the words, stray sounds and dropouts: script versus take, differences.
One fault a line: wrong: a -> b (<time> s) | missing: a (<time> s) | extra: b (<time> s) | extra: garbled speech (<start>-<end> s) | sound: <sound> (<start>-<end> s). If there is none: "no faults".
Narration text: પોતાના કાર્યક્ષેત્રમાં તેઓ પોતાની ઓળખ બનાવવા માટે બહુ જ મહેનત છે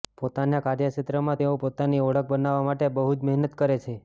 extra: કરે (3.6 s)